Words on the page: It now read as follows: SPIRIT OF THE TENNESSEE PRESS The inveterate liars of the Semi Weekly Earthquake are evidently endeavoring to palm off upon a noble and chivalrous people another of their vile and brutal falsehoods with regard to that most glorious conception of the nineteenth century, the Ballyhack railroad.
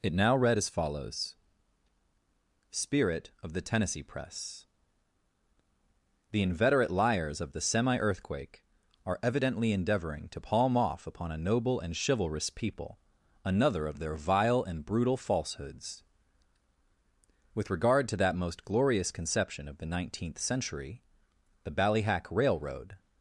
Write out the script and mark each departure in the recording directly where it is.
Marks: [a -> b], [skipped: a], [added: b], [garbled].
It now read as follows: SPIRIT OF THE TENNESSEE PRESS The inveterate liars of the Semi [skipped: Weekly] Earthquake are evidently endeavoring to palm off upon a noble and chivalrous people another of their vile and brutal falsehoods with regard to that most glorious conception of the nineteenth century, the Ballyhack railroad.